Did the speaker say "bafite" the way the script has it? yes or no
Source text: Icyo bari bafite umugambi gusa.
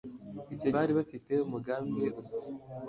yes